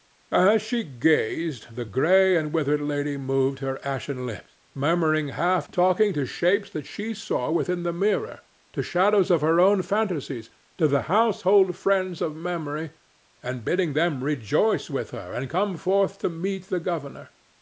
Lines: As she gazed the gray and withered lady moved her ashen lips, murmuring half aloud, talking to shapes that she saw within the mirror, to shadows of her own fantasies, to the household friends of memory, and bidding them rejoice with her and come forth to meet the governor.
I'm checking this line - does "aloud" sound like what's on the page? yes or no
no